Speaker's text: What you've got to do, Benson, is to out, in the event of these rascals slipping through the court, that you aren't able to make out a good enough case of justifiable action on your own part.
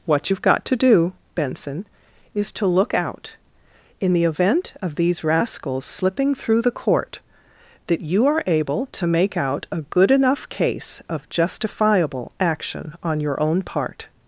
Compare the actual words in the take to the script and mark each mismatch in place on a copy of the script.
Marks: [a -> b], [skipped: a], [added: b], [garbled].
What you've got to do, Benson, is to [added: look] out, in the event of these rascals slipping through the court, that you [aren't -> are] able to make out a good enough case of justifiable action on your own part.